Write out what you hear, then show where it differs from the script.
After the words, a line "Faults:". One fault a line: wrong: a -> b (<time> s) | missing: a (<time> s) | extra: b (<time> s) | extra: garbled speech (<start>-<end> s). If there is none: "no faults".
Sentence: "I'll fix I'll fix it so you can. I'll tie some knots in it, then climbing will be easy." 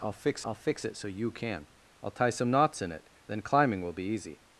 "I'll fix I'll fix it so you can. I'll tie some knots in it, then climbing will be easy."
Faults:
no faults